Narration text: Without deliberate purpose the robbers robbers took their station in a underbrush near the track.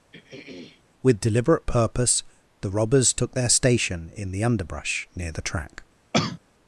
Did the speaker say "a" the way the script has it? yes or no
no